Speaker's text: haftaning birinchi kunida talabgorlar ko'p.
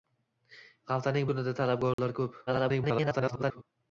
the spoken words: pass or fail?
fail